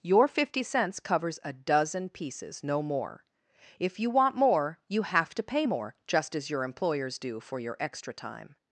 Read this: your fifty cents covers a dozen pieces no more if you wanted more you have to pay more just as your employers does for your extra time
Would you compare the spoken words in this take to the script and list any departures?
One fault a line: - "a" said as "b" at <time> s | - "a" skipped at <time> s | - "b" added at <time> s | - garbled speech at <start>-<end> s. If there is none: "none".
- "wanted" said as "want" at 4.1 s
- "does" said as "do" at 7.2 s